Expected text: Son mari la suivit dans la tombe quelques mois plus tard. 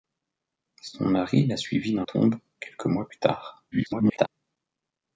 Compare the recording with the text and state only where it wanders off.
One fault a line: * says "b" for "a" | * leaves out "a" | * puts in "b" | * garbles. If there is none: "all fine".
* leaves out "la"
* garbles